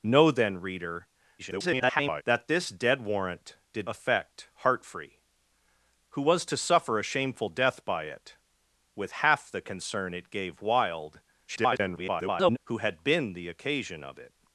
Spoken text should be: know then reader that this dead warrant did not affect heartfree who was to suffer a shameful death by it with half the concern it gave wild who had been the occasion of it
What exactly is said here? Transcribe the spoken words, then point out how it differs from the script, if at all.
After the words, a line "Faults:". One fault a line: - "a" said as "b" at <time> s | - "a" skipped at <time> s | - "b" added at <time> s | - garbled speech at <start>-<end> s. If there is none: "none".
know then reader [garbled] that this dead warrant did affect heartfree who was to suffer a shameful death by it with half the concern it gave wild [garbled] who had been the occasion of it
Faults:
- garbled speech at 1.4-2.2 s
- "not" skipped at 3.9 s
- garbled speech at 11.5-12.6 s